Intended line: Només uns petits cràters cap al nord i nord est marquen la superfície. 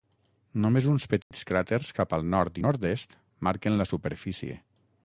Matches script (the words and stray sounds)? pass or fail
fail